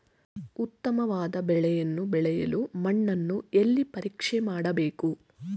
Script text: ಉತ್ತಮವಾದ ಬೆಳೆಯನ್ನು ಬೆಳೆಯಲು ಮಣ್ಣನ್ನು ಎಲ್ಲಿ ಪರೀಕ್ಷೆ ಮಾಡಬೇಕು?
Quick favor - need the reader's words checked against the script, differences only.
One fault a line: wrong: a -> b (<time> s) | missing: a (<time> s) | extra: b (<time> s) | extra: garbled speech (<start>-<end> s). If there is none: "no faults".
no faults